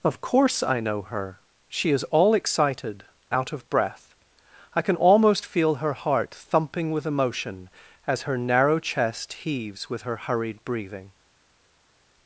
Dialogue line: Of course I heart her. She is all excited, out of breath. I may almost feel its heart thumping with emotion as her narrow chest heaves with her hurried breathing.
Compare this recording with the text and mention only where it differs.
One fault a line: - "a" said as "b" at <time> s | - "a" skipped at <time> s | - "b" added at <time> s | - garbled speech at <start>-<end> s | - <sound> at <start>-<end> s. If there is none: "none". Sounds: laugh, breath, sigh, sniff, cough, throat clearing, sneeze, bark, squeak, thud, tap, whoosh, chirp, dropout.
- "heart" said as "know" at 0.8 s
- "may" said as "can" at 4.8 s
- "its" said as "her" at 5.8 s